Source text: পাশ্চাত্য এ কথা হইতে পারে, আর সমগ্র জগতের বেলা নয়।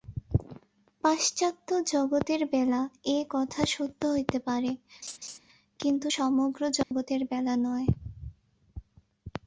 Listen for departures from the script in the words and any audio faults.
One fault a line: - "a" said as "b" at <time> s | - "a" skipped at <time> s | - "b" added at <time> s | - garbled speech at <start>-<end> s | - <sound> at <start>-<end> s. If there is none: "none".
- "জগতের বেলা" added at 1.9 s
- "সত্য" added at 3.6 s
- laugh at 5.0-5.4 s
- "আর" said as "কিন্তু" at 5.8 s
- dropout at 6.8-6.9 s